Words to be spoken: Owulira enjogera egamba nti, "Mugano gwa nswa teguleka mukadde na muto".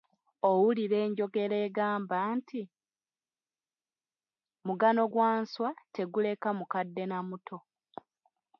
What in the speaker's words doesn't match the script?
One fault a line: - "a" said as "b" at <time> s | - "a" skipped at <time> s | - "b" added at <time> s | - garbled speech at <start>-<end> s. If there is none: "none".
none